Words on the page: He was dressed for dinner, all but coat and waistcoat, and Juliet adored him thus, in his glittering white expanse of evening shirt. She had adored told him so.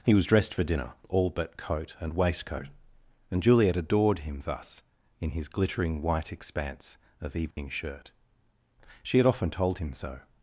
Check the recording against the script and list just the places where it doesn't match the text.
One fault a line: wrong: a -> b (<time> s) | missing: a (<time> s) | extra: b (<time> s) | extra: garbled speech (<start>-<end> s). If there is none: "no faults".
wrong: adored -> often (9.3 s)